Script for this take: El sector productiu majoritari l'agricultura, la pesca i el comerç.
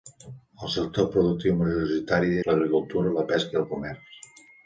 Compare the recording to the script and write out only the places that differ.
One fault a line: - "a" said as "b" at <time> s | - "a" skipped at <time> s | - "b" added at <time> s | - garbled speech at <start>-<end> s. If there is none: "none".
none